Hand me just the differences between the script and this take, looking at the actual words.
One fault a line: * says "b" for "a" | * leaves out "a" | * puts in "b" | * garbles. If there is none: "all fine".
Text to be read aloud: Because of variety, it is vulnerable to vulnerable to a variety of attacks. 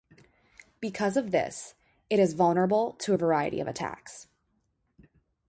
* says "this" for "variety"
* leaves out "vulnerable to"